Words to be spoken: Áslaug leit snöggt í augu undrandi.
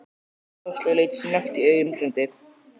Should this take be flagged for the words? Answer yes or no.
no